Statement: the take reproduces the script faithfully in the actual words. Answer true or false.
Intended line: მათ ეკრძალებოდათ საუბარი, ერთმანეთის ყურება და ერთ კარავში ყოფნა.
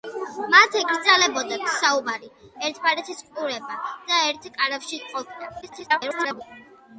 false